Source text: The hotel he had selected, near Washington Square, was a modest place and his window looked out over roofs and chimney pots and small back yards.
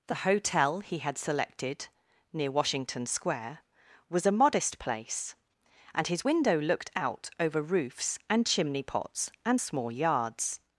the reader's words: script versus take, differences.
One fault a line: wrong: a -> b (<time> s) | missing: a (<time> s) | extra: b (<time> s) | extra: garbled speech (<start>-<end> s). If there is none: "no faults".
missing: back (9.9 s)